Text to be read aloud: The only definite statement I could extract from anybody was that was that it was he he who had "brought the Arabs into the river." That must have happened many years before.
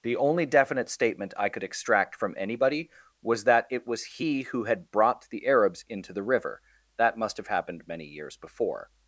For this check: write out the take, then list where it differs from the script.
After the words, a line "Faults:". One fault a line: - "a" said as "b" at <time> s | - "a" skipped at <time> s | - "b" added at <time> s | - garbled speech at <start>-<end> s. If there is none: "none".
The only definite statement I could extract from anybody was that it was he who had "brought the Arabs into the river." That must have happened many years before.
Faults:
- "was that" skipped at 3.7 s
- "he" skipped at 4.4 s